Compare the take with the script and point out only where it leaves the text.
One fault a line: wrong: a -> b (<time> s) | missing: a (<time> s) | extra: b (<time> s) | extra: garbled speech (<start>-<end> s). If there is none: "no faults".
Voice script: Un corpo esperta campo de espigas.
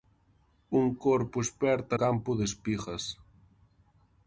no faults